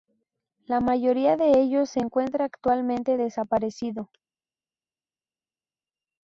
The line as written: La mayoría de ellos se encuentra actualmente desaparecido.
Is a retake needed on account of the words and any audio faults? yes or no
no